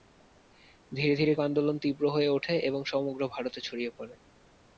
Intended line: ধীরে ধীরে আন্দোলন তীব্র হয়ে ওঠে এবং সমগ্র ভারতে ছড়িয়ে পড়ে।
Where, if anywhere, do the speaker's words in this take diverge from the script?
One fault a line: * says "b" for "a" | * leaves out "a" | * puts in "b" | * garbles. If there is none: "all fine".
all fine